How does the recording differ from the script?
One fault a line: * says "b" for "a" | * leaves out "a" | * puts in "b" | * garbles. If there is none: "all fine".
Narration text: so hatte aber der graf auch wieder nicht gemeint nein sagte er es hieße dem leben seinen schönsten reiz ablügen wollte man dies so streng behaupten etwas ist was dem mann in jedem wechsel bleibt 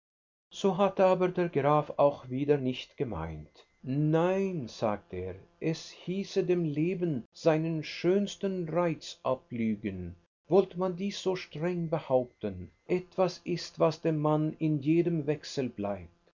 all fine